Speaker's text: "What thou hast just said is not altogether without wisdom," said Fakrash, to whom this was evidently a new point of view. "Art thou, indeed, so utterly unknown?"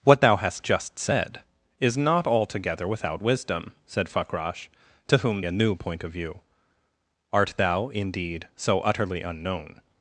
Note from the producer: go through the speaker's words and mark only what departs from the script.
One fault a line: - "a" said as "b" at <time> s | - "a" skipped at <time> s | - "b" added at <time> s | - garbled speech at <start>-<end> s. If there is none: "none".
- "this was evidently" skipped at 5.4 s